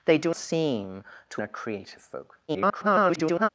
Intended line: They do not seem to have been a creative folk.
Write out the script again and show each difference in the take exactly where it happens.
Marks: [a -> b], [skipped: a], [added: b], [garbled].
They do [skipped: not] seem to [skipped: have been] a creative folk. [garbled]